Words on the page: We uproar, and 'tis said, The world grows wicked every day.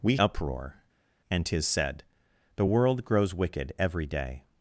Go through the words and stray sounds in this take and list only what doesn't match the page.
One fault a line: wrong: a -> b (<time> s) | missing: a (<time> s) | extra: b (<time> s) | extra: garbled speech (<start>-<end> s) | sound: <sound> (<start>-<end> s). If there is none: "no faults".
no faults